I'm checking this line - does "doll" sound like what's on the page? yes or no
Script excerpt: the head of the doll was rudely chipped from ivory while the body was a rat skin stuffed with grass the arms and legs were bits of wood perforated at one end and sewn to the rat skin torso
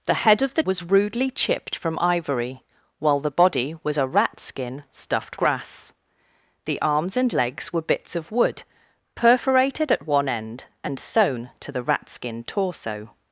no